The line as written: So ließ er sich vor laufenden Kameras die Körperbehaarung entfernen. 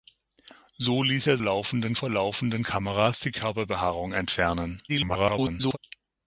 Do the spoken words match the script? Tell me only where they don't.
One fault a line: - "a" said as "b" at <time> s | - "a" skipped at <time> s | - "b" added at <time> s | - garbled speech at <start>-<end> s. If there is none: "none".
- "sich" said as "laufenden" at 1.4 s
- garbled speech at 4.9-5.8 s